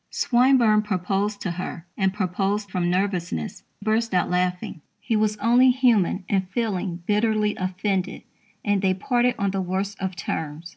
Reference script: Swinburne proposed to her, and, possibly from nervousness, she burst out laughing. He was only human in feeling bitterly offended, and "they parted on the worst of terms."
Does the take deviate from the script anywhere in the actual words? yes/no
yes